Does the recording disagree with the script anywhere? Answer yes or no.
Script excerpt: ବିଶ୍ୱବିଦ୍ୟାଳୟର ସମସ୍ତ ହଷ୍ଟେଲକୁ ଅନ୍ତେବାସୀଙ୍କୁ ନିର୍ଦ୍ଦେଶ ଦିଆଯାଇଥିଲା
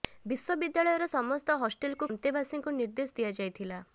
no